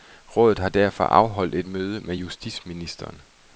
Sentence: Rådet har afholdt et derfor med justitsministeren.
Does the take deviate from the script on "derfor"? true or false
true